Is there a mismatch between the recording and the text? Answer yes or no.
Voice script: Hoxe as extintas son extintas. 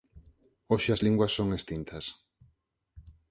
yes